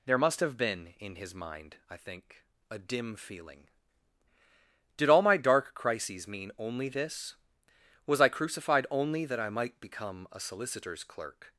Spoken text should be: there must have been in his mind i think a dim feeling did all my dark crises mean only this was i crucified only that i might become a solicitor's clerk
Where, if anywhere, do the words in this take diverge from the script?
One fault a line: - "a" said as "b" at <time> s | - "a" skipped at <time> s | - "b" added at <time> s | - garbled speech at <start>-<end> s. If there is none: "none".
none